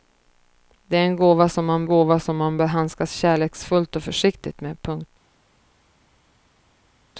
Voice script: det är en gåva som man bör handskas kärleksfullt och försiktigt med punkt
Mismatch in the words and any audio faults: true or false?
true